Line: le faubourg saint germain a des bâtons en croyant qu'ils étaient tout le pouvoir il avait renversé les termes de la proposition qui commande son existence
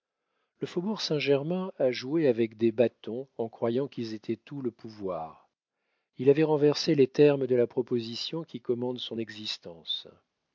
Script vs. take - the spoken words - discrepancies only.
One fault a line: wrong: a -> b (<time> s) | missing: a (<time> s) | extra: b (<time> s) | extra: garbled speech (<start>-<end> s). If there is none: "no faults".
extra: joué avec (1.9 s)